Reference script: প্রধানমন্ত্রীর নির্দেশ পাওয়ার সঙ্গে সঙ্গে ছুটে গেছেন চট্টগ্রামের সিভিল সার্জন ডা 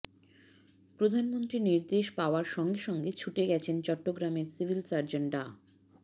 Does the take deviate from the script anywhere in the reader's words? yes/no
no